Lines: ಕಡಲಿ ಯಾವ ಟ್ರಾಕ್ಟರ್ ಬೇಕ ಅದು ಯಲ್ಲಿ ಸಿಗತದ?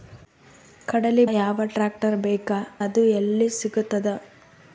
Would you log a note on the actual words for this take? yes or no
no